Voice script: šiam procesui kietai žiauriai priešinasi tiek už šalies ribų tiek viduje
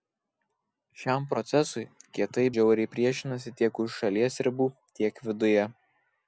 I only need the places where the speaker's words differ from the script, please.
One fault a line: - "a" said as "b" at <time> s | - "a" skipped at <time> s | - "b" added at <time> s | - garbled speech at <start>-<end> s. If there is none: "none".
none